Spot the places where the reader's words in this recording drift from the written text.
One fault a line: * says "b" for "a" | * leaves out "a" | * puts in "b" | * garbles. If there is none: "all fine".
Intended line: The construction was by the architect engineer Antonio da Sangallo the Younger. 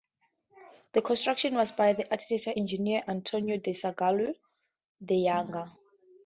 all fine